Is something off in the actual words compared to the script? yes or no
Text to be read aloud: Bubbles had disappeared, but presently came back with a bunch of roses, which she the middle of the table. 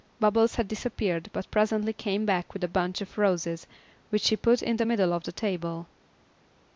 yes